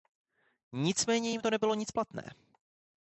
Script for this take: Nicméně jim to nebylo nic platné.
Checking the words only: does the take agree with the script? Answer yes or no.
yes